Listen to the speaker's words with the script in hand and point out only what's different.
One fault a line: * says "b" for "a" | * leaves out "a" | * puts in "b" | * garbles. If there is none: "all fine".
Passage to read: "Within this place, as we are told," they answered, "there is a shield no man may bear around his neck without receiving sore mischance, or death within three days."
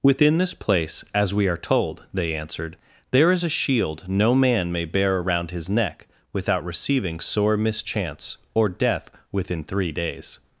all fine